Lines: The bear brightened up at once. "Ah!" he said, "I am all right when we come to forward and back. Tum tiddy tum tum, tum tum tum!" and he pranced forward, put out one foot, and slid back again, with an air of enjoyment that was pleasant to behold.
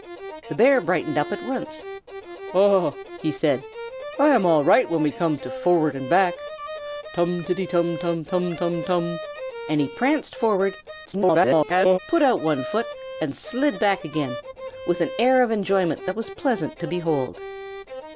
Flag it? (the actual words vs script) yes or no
yes